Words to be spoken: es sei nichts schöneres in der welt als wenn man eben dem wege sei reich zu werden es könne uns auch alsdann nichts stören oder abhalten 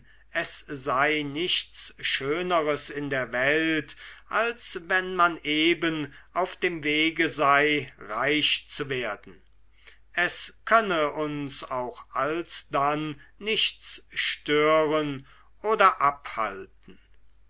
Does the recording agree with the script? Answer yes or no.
no